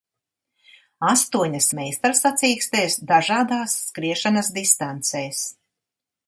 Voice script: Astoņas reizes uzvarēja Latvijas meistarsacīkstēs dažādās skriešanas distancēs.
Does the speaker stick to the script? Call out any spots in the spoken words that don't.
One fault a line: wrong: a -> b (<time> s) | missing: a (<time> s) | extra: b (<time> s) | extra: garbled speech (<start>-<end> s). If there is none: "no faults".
missing: reizes uzvarēja Latvijas (1.7 s)